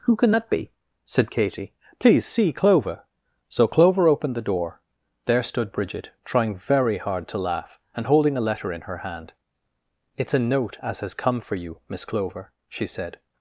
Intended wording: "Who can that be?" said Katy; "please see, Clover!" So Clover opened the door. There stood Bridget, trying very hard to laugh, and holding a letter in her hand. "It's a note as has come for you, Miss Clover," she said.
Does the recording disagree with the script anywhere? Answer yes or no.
no